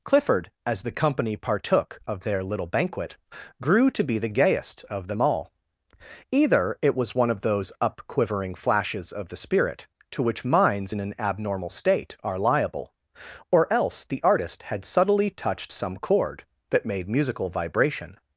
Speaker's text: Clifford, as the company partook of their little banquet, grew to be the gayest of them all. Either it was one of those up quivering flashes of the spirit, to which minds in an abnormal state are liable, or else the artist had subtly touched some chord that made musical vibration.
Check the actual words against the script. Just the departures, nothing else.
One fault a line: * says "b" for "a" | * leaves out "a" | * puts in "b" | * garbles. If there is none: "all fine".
all fine